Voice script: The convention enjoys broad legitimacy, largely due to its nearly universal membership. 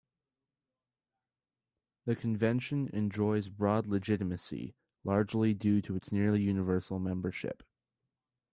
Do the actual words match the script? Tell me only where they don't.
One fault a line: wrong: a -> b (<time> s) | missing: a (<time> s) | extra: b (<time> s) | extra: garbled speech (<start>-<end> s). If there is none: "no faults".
no faults